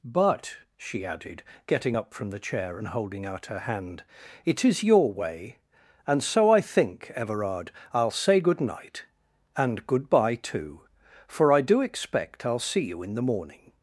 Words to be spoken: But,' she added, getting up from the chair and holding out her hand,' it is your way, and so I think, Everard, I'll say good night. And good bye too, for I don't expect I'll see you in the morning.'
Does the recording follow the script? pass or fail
fail